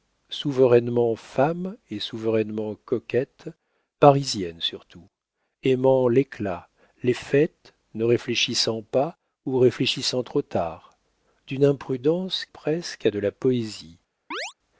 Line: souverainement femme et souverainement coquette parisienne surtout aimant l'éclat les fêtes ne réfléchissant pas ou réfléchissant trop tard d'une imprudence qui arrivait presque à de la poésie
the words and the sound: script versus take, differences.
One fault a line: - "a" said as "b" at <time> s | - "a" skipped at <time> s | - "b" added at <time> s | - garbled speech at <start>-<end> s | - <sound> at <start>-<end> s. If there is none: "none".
- "qui arrivait" skipped at 12.4 s
- chirp at 14.3-14.5 s